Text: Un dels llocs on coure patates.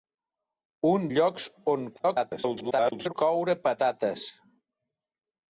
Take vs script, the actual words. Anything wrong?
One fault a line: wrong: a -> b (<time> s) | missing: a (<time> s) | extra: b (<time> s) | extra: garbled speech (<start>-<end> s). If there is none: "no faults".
missing: dels (1.0 s)
extra: garbled speech (2.0-3.1 s)